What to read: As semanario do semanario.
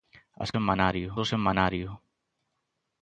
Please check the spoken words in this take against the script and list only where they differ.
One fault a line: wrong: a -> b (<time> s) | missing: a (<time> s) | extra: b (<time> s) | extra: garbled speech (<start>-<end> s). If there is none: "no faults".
no faults